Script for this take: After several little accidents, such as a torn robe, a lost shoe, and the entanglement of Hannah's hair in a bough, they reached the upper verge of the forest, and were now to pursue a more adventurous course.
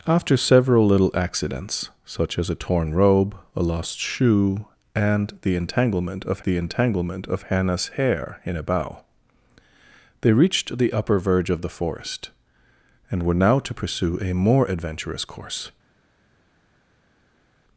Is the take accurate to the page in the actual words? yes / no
no